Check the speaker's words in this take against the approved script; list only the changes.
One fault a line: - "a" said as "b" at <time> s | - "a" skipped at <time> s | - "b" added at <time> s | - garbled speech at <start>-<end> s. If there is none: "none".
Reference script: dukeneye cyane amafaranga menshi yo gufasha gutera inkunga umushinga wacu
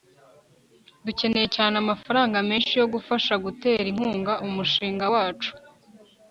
none